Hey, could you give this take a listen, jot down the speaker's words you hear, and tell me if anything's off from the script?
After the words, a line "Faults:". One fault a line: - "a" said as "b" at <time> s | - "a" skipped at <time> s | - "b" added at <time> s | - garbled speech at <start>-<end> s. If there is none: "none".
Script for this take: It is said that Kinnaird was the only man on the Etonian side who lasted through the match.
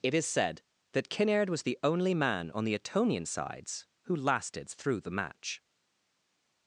It is said that Kinnaird was the only man on the Etonian sides who lasted through the match.
Faults:
- "side" said as "sides" at 3.2 s